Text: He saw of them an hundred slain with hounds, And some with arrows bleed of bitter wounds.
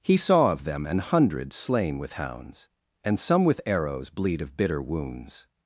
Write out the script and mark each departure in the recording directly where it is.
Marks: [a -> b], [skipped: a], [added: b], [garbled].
He saw of them an hundred slain with hounds, And some with arrows bleed of bitter wounds.